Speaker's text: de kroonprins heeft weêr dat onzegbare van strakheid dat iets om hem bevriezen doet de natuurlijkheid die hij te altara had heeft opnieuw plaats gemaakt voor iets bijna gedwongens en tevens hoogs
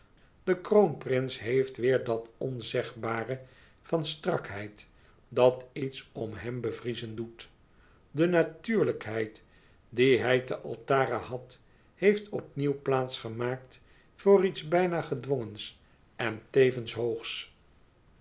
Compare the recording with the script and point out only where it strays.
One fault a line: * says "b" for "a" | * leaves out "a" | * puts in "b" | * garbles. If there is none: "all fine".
all fine